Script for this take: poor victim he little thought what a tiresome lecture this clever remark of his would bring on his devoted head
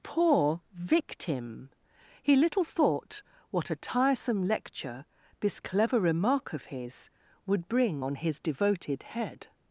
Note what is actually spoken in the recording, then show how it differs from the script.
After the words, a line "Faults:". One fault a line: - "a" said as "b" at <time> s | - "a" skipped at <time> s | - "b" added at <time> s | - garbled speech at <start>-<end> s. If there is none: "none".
poor victim he little thought what a tiresome lecture this clever remark of his would bring on his devoted head
Faults:
none